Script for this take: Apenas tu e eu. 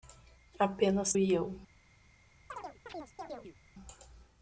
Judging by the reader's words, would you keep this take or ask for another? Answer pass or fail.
fail